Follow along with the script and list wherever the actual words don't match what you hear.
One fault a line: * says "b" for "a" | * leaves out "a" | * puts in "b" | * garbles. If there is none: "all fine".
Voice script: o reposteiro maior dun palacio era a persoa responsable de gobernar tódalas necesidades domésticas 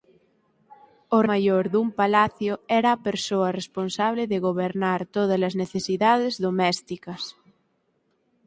* leaves out "reposteiro"